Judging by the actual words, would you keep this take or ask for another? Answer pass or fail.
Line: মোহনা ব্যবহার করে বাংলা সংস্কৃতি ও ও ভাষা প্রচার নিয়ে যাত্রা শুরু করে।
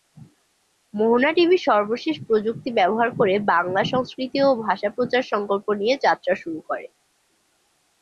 fail